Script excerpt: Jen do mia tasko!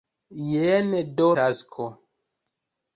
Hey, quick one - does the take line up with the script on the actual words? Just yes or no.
no